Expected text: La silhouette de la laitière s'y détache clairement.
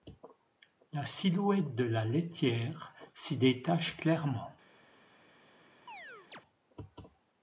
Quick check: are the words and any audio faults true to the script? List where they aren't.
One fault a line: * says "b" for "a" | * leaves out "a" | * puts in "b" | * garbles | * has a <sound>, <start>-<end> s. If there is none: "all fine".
* has a chirp, 5.9-6.4 s